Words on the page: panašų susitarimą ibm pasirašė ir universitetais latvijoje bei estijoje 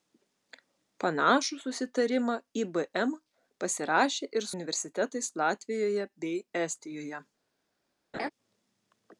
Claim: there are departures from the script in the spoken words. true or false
false